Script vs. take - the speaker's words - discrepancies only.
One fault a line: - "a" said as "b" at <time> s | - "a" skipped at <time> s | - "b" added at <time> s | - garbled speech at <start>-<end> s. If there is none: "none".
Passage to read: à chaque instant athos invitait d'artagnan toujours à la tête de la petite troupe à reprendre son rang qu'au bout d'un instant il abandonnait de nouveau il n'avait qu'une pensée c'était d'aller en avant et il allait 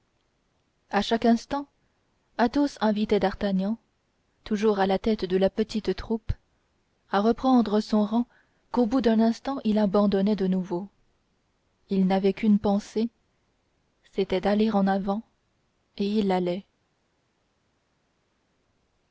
none